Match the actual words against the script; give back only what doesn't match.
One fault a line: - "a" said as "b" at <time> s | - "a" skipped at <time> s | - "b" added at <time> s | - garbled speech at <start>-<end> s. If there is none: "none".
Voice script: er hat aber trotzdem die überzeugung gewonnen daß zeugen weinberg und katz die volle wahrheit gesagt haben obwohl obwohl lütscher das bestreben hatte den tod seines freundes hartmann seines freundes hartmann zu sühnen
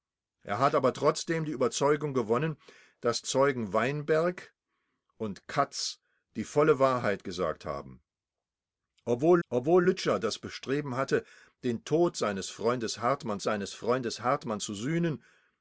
none